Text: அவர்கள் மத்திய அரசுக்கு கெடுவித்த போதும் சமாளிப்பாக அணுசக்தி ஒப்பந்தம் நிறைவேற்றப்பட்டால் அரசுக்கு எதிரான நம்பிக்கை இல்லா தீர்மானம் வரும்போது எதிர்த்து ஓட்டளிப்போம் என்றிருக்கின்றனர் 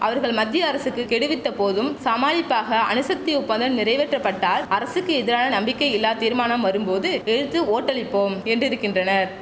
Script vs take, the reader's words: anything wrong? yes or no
no